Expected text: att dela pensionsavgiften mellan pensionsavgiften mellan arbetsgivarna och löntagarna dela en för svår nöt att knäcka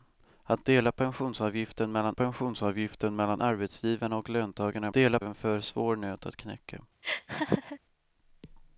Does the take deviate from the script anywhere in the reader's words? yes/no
no